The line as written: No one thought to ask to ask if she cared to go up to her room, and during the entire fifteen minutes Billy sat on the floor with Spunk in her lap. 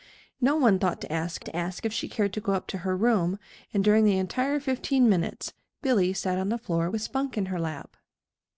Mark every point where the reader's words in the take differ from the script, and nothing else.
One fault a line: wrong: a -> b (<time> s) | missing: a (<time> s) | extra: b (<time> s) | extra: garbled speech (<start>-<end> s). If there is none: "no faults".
no faults